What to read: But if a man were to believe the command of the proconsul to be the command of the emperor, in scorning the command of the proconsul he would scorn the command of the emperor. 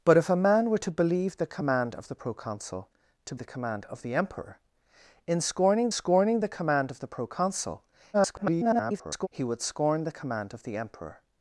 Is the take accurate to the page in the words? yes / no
no